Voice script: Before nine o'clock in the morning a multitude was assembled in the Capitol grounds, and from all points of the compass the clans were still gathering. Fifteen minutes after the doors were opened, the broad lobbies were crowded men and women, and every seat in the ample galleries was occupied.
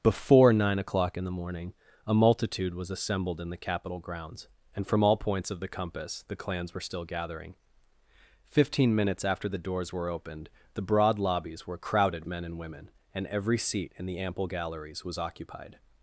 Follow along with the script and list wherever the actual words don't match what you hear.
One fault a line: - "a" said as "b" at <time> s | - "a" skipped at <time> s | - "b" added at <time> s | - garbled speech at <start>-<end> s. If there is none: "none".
none